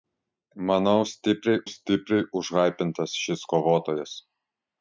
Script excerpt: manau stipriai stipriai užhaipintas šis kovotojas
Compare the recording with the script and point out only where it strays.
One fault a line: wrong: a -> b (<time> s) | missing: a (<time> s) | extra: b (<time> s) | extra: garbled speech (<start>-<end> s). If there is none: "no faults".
no faults